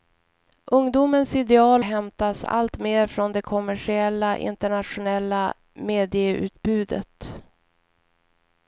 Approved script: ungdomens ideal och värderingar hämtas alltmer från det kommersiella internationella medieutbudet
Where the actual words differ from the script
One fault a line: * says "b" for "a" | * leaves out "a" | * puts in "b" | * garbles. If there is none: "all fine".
* leaves out "och värderingar"